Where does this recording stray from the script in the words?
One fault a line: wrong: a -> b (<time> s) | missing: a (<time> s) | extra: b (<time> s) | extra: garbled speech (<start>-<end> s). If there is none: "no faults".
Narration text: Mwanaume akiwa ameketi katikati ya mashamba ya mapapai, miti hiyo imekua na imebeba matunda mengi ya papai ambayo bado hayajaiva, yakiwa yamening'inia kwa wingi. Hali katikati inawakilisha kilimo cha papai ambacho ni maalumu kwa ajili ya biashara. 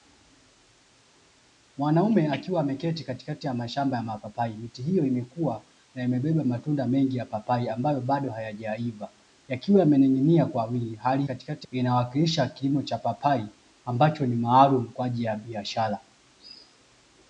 no faults